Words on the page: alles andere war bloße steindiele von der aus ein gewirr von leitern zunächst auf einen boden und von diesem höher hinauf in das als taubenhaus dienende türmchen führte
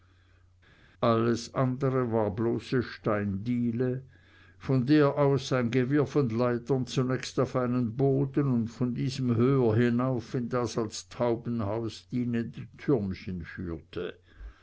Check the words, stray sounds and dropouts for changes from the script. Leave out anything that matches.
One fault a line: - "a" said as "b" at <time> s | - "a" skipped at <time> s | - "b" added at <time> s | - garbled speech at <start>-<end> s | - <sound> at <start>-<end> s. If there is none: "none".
none